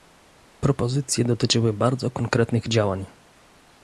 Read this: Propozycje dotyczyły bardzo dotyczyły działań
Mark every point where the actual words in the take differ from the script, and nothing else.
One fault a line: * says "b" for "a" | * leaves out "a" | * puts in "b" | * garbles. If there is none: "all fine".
* says "konkretnych" for "dotyczyły"